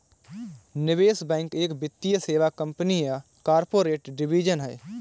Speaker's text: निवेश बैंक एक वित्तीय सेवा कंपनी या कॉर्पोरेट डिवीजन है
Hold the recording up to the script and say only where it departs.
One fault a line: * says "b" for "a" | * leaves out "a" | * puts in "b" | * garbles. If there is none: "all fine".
all fine